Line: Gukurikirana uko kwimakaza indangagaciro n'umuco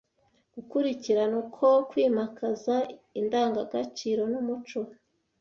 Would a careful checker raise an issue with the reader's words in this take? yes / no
no